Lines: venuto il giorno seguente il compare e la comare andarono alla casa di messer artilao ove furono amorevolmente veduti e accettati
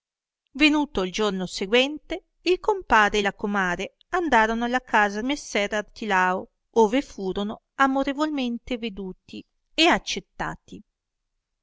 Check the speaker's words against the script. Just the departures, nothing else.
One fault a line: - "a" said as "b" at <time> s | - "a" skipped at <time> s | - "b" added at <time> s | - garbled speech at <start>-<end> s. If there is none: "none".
- "di" skipped at 5.2 s